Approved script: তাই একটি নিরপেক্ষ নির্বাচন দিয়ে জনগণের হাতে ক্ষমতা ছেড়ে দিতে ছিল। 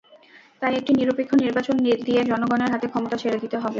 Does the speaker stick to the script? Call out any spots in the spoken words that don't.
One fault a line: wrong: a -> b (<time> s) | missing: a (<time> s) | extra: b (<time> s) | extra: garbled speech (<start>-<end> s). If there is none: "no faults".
wrong: ছিল -> হবে (3.6 s)